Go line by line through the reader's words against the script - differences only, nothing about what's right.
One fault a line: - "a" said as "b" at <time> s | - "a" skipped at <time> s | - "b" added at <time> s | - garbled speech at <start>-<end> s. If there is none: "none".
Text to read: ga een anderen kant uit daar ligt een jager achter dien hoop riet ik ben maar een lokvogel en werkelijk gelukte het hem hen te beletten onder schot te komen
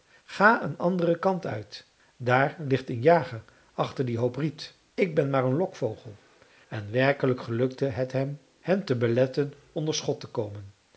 none